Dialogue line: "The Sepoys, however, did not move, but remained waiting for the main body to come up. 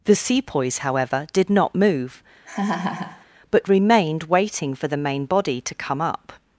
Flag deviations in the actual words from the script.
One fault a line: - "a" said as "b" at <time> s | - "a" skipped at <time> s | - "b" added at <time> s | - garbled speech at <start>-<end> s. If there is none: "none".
none